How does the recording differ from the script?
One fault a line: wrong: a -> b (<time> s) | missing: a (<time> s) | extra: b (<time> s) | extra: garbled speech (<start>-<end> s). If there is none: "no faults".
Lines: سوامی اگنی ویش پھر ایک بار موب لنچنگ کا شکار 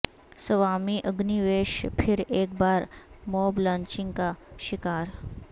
no faults